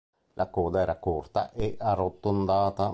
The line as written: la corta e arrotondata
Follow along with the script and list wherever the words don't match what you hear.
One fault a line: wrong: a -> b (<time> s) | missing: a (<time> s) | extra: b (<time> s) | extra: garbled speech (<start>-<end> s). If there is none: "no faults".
extra: coda era (0.5 s)